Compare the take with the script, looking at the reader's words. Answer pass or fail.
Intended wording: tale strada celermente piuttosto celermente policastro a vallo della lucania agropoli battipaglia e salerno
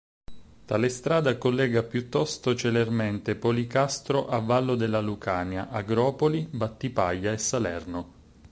fail